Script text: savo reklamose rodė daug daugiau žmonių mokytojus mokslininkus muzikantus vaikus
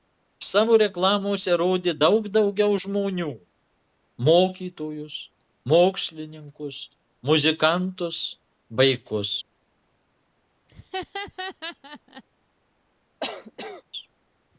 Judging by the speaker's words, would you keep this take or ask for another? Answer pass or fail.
pass